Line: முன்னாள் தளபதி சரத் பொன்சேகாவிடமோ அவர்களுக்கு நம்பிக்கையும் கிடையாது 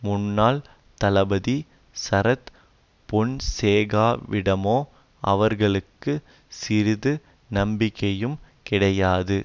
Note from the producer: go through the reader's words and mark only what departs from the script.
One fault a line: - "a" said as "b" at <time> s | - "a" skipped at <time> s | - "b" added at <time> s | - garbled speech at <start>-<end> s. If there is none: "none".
- "சிறிது" added at 6.6 s